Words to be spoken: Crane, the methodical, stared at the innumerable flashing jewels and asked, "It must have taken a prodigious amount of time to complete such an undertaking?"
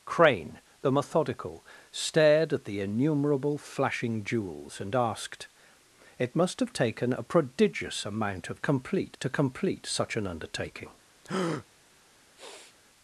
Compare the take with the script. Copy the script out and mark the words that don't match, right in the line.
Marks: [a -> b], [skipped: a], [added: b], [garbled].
Crane, the methodical, stared at the innumerable flashing jewels and asked, "It must have taken a prodigious amount of [time -> complete] to complete such an undertaking?"